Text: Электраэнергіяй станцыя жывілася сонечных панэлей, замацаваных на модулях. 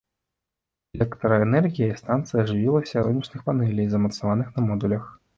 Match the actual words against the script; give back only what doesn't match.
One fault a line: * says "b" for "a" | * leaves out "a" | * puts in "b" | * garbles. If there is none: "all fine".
all fine